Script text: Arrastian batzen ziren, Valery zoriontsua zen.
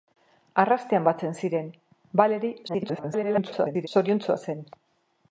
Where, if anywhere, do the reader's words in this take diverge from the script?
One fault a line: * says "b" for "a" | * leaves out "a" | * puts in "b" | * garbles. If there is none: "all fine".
* garbles